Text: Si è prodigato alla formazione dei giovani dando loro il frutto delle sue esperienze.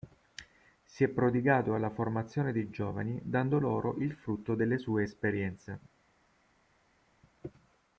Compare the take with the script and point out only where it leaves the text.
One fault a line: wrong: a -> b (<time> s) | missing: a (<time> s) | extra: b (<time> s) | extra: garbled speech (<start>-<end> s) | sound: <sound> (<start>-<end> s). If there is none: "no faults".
no faults